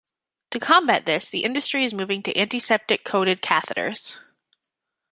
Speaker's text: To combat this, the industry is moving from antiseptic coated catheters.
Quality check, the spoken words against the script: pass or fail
fail